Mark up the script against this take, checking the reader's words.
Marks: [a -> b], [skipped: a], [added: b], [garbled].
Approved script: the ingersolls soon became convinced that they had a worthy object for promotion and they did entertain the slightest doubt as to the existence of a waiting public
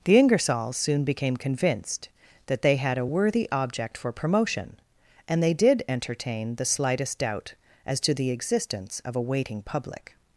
the ingersolls soon became convinced that they had a worthy object for promotion and they did entertain the slightest doubt as to the existence of a waiting public